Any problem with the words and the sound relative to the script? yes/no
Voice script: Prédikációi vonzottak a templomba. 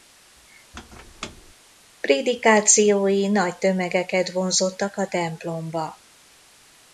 yes